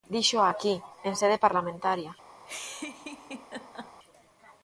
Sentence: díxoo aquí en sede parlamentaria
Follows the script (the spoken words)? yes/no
yes